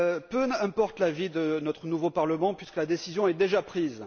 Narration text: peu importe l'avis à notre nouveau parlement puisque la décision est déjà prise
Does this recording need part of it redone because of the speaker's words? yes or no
yes